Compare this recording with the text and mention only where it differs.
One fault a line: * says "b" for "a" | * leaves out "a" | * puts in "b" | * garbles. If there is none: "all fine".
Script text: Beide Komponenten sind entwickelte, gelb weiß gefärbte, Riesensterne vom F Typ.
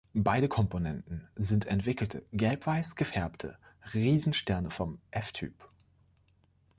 all fine